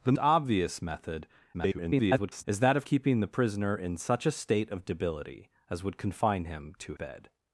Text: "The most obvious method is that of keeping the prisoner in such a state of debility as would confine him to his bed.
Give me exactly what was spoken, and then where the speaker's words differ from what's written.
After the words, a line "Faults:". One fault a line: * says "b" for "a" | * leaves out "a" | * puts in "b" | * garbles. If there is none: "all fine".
"The obvious method [garbled] is that of keeping the prisoner in such a state of debility as would confine him to bed.
Faults:
* leaves out "most"
* garbles
* leaves out "his"